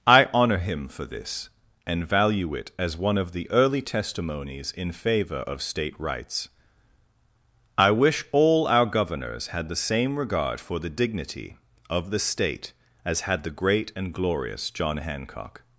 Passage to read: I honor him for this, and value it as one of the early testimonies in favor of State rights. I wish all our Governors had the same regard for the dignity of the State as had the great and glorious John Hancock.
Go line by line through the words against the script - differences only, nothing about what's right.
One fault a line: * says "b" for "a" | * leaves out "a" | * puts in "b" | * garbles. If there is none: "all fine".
all fine